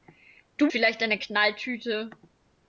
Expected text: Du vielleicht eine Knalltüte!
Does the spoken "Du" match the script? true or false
true